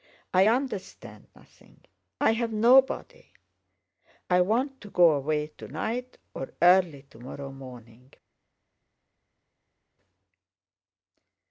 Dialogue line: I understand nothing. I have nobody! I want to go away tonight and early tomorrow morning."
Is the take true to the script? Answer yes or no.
no